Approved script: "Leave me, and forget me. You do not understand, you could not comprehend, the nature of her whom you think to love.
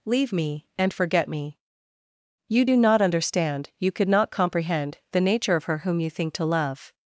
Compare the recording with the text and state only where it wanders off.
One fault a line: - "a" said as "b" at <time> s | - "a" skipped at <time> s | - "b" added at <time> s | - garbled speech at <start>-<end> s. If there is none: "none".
none